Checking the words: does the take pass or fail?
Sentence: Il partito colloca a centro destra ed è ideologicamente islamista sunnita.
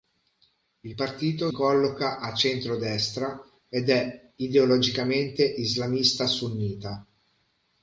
pass